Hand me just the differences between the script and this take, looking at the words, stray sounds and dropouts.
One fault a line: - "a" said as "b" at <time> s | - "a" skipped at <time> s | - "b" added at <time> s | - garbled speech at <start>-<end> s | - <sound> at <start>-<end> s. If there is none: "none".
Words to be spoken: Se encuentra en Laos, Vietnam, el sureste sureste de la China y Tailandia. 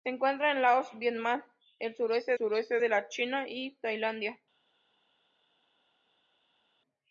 none